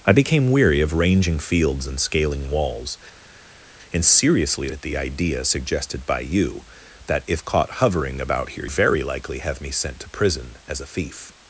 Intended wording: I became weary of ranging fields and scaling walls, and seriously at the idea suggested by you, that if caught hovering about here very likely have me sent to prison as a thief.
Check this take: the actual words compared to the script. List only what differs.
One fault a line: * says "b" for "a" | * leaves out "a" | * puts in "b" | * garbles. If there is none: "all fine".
all fine